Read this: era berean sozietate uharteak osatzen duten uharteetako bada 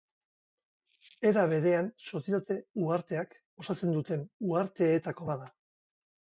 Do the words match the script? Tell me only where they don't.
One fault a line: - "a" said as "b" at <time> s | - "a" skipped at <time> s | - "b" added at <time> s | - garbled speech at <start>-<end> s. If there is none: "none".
none